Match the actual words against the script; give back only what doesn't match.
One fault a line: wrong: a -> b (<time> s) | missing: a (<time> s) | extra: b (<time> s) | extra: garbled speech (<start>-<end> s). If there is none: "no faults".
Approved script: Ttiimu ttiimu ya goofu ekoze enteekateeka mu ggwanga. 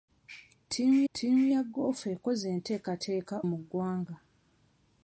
no faults